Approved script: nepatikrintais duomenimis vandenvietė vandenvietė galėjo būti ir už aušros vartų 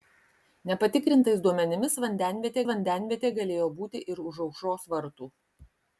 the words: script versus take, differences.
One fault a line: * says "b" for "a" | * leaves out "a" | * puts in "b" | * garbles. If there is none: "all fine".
all fine